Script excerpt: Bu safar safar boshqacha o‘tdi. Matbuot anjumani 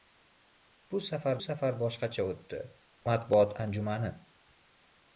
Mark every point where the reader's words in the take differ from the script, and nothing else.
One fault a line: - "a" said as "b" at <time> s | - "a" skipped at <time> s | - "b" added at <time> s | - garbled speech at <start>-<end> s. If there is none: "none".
none